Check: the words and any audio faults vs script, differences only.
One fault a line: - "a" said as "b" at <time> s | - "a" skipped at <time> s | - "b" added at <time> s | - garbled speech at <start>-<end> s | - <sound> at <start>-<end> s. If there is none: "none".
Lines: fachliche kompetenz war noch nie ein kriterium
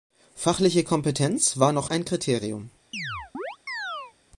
- "nie" skipped at 1.9 s
- chirp at 2.9-4.1 s